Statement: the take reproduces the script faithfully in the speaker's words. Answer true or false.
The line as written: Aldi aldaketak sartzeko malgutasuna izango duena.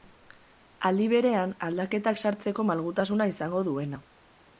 false